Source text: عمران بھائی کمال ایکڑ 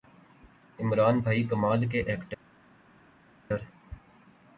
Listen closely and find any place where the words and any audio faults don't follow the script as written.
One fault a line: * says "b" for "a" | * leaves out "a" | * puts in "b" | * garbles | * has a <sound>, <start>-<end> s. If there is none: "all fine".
* puts in "کے"